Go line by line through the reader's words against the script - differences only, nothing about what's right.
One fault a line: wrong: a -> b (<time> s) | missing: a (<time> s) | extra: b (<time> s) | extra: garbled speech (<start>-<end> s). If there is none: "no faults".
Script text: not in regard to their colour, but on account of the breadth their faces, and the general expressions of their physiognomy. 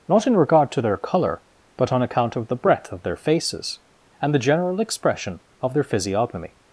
extra: of (2.9 s)
wrong: expressions -> expression (4.8 s)